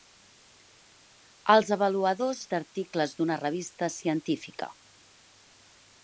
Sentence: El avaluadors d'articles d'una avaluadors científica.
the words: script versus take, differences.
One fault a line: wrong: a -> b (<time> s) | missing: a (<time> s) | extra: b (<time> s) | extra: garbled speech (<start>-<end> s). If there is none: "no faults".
wrong: El -> Els (1.6 s)
wrong: avaluadors -> revista (3.4 s)